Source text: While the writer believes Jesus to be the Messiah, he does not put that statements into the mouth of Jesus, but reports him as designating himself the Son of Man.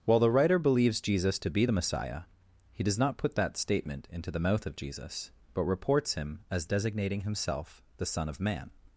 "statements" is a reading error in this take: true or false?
true